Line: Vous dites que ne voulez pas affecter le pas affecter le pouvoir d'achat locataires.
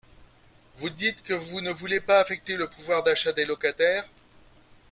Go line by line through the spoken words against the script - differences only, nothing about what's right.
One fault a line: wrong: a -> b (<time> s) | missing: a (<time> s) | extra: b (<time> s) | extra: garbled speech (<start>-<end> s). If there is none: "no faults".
extra: vous (1.3 s)
missing: pas affecter le (2.7 s)
extra: des (3.3 s)